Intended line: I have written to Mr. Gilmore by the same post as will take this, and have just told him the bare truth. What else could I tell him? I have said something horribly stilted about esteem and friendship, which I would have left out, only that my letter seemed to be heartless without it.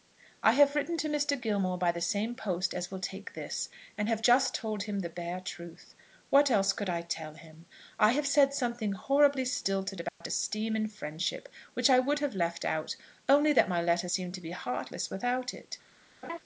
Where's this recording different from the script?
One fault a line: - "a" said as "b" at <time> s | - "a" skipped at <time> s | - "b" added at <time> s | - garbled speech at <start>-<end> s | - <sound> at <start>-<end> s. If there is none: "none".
- dropout at 10.1-10.2 s
- laugh at 16.2-16.4 s